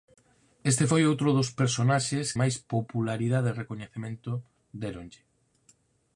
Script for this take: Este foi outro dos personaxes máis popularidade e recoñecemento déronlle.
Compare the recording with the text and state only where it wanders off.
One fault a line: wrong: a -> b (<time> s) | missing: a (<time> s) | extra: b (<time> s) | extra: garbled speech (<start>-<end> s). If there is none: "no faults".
no faults